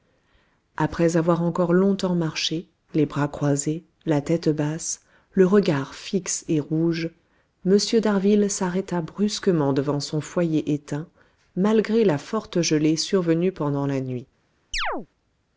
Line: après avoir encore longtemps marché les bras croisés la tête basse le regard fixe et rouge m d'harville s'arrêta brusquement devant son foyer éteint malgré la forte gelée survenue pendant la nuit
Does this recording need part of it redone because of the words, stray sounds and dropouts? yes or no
yes